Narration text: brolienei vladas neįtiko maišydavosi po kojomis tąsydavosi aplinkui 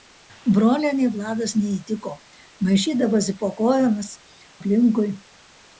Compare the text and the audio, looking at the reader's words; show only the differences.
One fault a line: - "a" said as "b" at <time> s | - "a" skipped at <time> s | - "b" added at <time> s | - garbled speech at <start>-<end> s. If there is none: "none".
- "tąsydavosi" skipped at 4.1 s